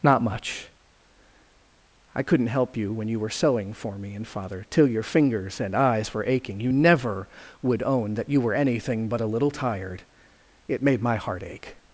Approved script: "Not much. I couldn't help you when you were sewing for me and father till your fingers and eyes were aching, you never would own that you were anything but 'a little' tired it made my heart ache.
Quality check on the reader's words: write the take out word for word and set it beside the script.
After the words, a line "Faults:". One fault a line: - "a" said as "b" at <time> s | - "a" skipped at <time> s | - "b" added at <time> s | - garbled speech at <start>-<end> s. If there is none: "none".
"Not much. I couldn't help you when you were sewing for me and father till your fingers and eyes were aching, you never would own that you were anything but 'a little' tired it made my heart ache.
Faults:
none